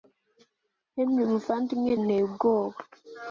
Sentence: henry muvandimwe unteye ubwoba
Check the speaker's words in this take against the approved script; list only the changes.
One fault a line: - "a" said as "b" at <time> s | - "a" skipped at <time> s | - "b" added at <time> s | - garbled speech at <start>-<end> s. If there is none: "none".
none